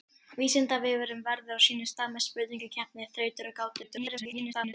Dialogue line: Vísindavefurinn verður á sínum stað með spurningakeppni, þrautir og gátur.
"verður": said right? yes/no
yes